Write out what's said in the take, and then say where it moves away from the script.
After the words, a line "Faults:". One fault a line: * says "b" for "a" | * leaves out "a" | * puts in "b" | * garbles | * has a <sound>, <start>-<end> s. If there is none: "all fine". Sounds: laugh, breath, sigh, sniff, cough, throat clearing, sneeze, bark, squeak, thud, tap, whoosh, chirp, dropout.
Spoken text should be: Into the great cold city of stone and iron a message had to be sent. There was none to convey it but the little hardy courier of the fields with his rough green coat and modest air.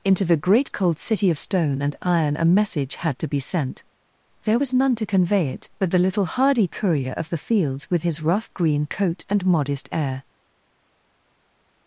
Into the great cold city of stone and iron a message had to be sent. There was none to convey it but the little hardy courier of the fields with his rough green coat and modest air.
Faults:
all fine